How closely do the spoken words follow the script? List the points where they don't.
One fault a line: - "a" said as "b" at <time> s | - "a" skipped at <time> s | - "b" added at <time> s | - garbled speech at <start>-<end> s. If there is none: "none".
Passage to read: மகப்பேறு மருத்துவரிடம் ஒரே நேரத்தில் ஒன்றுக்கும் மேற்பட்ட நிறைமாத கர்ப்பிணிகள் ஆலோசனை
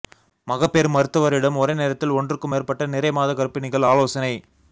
none